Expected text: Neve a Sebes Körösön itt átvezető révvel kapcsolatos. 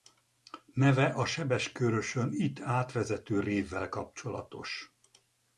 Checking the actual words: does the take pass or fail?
pass